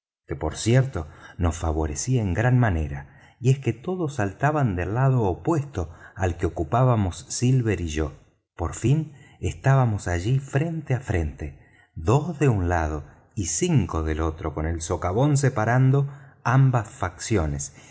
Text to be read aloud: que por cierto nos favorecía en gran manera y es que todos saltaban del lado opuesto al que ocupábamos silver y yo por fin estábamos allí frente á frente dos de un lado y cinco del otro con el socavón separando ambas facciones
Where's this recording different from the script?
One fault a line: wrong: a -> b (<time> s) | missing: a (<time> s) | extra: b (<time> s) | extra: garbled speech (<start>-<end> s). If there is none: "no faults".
no faults